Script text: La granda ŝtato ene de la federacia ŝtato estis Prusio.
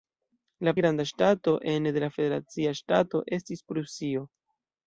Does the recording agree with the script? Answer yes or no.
yes